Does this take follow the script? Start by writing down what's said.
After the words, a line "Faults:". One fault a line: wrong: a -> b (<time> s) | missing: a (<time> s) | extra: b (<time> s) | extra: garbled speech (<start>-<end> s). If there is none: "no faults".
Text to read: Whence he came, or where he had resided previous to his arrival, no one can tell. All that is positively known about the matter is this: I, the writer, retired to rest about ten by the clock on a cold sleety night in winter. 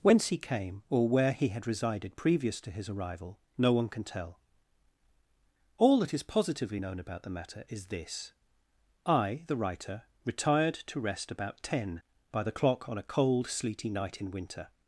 Whence he came, or where he had resided previous to his arrival, no one can tell. All that is positively known about the matter is this: I, the writer, retired to rest about ten by the clock on a cold sleety night in winter.
Faults:
no faults